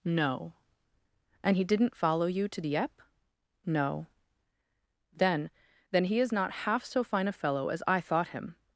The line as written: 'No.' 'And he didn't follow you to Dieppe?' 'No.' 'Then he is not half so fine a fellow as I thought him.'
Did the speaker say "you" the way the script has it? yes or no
yes